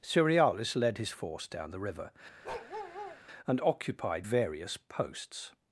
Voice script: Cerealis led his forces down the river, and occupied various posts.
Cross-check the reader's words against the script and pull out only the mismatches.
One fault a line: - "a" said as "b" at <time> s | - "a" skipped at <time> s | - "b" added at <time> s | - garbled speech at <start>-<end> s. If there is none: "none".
- "forces" said as "force" at 1.1 s